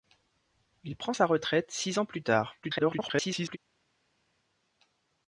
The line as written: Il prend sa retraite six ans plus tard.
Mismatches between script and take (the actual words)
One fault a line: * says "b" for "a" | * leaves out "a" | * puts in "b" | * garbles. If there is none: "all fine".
* garbles